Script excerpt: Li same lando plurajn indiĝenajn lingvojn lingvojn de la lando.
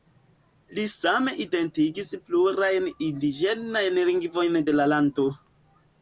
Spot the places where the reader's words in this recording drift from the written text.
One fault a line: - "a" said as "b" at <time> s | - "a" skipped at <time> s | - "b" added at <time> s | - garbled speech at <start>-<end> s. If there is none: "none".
- "lando" said as "identigis" at 1.4 s
- "lingvojn" skipped at 4.6 s